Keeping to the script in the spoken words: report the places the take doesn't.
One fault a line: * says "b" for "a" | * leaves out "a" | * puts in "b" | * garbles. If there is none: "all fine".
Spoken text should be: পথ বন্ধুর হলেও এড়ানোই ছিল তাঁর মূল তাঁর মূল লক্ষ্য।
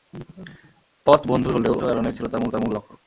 all fine